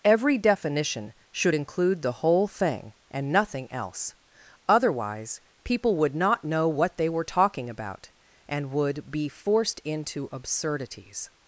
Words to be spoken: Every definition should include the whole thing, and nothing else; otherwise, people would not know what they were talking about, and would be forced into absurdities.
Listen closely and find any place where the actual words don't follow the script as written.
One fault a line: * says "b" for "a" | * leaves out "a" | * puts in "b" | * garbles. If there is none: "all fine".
all fine